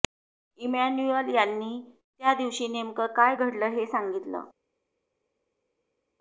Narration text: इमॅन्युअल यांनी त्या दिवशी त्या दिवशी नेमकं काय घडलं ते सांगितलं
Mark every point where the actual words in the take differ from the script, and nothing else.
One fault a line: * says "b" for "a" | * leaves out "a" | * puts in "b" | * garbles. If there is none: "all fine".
* leaves out "त्या दिवशी"
* says "हे" for "ते"